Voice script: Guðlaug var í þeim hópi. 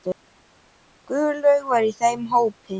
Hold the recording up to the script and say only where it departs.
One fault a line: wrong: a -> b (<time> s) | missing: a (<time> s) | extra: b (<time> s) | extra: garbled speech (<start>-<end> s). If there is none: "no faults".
no faults